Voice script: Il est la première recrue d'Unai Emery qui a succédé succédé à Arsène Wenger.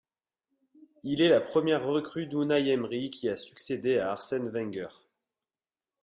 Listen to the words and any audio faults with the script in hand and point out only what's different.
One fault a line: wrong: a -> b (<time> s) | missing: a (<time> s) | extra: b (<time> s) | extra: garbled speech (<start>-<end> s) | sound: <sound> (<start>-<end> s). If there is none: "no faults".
missing: succédé (4.0 s)